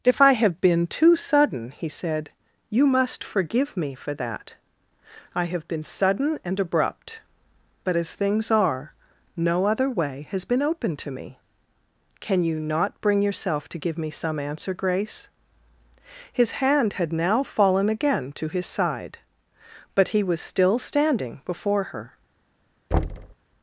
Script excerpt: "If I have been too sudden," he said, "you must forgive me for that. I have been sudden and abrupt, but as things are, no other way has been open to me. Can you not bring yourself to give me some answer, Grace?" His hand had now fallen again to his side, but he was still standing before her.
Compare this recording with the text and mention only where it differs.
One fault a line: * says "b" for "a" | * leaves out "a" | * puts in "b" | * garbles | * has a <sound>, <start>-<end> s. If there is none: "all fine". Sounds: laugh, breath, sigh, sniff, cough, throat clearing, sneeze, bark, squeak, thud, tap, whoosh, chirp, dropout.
* has a thud, 22.9-23.4 s